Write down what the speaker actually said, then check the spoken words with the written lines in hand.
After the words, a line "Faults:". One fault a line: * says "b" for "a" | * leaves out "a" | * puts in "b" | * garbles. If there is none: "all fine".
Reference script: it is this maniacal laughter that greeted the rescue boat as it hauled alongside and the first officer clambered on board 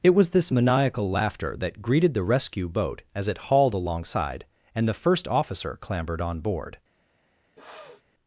it was this maniacal laughter that greeted the rescue boat as it hauled alongside and the first officer clambered on board
Faults:
* says "was" for "is"